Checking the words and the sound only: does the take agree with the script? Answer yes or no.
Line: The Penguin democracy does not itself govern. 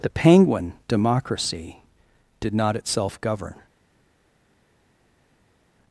no